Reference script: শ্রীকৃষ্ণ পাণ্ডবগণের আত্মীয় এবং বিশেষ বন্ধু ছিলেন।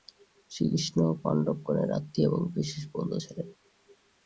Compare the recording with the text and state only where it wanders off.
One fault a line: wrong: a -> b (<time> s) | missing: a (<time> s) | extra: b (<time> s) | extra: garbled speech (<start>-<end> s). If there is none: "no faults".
no faults